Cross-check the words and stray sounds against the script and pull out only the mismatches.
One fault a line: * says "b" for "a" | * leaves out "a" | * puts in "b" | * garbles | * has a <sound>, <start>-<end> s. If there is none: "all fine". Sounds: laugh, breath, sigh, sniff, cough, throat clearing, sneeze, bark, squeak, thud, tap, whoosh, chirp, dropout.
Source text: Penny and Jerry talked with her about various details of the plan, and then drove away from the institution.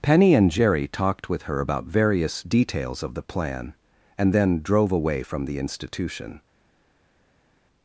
all fine